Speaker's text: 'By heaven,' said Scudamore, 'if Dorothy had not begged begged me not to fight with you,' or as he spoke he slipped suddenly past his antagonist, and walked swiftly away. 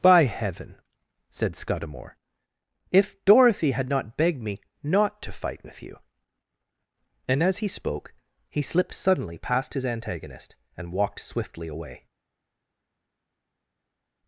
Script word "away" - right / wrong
right